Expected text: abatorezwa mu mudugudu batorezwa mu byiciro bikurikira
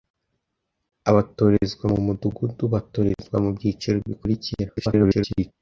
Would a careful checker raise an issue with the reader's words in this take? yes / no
yes